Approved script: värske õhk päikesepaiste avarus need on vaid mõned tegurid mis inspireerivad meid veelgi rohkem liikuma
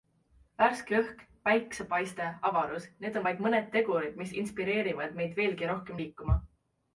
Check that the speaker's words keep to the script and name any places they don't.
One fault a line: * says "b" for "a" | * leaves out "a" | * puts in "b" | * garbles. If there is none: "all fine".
all fine